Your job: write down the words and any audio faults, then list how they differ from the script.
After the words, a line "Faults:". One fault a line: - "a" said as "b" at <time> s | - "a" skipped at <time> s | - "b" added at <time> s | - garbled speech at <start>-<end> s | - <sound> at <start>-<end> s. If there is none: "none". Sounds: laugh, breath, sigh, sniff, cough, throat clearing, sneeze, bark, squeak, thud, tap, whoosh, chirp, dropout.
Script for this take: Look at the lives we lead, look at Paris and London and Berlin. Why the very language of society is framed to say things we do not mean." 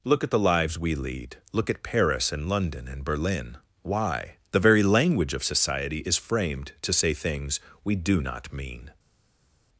Look at the lives we lead, look at Paris and London and Berlin. Why the very language of society is framed to say things we do not mean."
Faults:
none